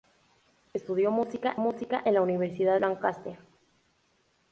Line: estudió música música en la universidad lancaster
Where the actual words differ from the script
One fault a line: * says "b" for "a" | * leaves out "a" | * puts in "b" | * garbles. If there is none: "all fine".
all fine